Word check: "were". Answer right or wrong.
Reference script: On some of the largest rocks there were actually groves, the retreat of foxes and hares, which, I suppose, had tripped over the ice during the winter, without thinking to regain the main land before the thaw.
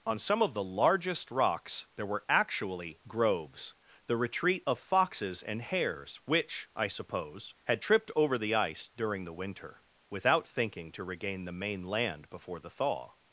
right